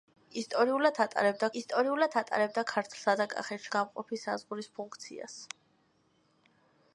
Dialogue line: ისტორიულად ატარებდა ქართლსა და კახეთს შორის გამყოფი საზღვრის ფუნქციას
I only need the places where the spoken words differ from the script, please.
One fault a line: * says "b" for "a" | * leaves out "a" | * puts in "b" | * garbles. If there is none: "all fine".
* puts in "ისტორიულად ატარებდა"
* leaves out "შორის"